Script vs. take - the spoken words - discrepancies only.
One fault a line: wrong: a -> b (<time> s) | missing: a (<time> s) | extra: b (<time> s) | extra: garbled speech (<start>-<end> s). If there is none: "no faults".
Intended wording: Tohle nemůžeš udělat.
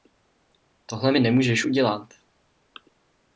extra: mi (1.1 s)